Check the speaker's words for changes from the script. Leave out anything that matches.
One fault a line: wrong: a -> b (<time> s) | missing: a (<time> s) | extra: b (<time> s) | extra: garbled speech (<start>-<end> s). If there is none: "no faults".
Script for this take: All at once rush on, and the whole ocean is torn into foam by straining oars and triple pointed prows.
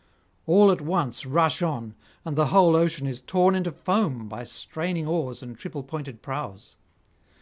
no faults